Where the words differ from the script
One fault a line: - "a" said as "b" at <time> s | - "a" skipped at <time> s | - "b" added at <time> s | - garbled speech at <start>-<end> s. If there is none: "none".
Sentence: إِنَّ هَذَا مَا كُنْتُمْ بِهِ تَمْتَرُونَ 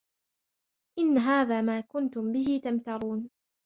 none